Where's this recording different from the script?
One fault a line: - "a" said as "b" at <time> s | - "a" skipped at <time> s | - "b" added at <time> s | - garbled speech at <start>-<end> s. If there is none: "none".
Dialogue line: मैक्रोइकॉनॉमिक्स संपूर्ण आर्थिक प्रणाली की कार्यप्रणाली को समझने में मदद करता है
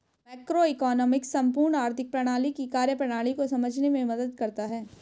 none